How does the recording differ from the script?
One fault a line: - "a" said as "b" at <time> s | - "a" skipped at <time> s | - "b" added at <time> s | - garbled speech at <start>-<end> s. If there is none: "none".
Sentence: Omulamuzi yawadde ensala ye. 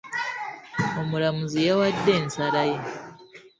none